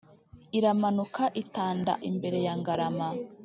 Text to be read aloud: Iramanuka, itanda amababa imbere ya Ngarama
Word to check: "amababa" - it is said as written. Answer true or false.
false